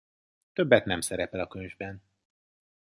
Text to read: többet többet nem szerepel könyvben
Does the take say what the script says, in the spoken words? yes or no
no